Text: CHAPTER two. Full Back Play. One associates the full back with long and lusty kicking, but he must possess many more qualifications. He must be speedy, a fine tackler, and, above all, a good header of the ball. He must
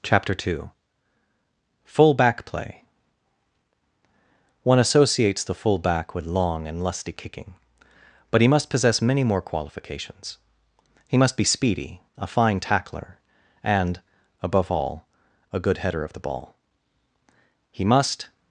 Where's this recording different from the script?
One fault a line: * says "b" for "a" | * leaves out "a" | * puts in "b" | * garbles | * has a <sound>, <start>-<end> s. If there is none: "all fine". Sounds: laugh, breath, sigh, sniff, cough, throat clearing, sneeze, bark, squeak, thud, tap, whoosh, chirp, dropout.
all fine